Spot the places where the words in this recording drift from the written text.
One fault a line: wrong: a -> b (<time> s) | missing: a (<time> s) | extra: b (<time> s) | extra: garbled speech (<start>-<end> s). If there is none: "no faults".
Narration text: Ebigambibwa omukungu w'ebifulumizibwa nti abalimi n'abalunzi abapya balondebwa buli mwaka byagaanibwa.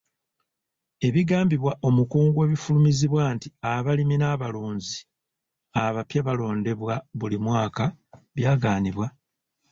no faults